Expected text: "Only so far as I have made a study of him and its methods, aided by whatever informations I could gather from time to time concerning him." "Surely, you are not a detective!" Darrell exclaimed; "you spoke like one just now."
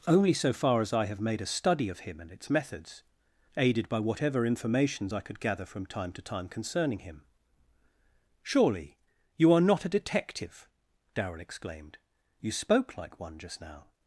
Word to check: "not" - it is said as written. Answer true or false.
true